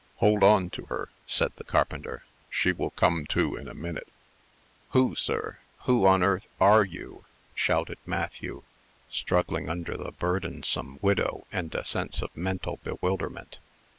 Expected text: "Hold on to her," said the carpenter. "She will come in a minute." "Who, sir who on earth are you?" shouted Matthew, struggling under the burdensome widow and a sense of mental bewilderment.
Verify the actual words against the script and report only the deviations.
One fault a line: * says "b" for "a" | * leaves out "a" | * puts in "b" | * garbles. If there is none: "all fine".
* puts in "to"